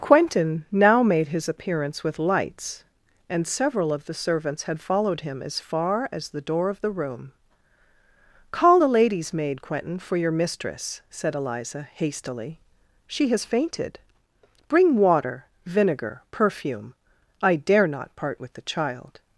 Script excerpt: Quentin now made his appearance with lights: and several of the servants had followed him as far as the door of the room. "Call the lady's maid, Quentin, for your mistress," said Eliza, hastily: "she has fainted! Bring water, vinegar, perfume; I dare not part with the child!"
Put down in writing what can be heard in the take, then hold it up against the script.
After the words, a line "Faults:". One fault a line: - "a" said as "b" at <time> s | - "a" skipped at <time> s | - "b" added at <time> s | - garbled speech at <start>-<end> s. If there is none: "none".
Quentin now made his appearance with lights: and several of the servants had followed him as far as the door of the room. "Call the lady's maid, Quentin, for your mistress," said Eliza, hastily: "she has fainted! Bring water, vinegar, perfume; I dare not part with the child!"
Faults:
none